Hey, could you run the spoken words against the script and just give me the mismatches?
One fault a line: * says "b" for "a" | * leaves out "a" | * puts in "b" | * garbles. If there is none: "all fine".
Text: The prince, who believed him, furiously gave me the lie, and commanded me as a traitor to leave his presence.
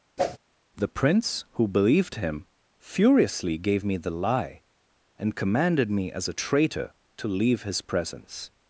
all fine